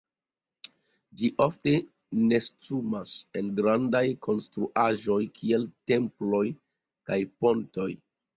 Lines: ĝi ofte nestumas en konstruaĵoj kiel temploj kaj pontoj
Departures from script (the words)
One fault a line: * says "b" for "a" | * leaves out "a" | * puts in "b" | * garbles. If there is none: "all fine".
* puts in "grandaj"